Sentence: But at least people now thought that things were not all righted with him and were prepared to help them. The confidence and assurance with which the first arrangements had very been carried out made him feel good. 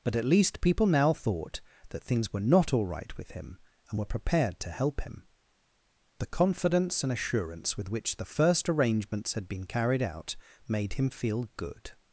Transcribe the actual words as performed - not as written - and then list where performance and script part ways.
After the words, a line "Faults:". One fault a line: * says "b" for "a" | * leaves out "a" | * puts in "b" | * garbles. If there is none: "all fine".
But at least people now thought that things were not all right with him and were prepared to help him. The confidence and assurance with which the first arrangements had been carried out made him feel good.
Faults:
* says "right" for "righted"
* says "him" for "them"
* leaves out "very"